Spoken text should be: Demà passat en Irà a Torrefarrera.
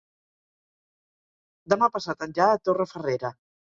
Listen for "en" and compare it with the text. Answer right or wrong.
right